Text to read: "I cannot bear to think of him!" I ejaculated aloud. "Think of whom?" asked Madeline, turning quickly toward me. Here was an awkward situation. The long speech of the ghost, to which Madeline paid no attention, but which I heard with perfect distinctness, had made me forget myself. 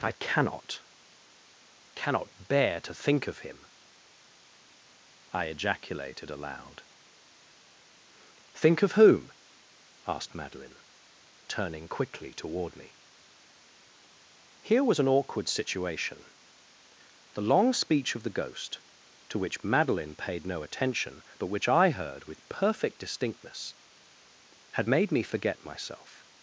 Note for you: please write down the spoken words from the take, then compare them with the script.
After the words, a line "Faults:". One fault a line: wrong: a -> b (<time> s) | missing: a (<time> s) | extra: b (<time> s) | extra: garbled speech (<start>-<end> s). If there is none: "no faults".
"I cannot cannot bear to think of him!" I ejaculated aloud. "Think of whom?" asked Madeline, turning quickly toward me. Here was an awkward situation. The long speech of the ghost, to which Madeline paid no attention, but which I heard with perfect distinctness, had made me forget myself.
Faults:
extra: cannot (1.9 s)